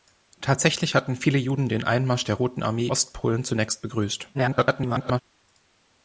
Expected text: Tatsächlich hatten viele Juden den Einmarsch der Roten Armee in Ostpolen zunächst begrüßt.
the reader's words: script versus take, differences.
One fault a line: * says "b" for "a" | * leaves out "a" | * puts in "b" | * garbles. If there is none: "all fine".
* leaves out "in"
* garbles